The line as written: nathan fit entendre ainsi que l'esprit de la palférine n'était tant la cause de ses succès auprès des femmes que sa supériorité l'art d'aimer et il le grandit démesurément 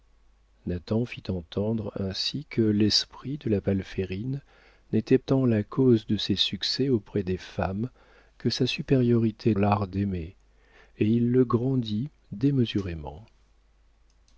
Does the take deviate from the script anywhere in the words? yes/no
no